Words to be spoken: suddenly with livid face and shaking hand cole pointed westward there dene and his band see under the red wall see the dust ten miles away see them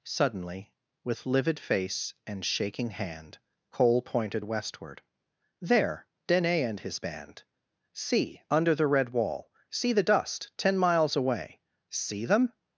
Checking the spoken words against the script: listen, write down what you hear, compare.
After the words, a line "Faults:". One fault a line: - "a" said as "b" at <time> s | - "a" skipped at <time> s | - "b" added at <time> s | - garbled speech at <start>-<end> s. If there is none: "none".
suddenly with livid face and shaking hand cole pointed westward there dene and his band see under the red wall see the dust ten miles away see them
Faults:
none